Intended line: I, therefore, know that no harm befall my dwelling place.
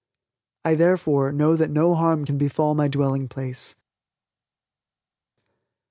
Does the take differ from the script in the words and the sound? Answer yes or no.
yes